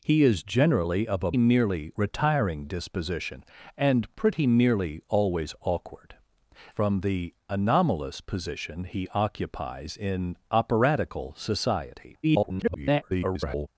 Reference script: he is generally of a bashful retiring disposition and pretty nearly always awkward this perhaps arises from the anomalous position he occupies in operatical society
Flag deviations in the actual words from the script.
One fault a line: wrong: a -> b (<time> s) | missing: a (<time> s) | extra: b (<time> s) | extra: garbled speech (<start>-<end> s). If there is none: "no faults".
wrong: bashful -> nearly (1.4 s)
missing: this perhaps arises (6.2 s)
extra: garbled speech (12.2-13.7 s)